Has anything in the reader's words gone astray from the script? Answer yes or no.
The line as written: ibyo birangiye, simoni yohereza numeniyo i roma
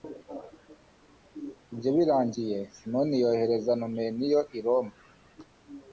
no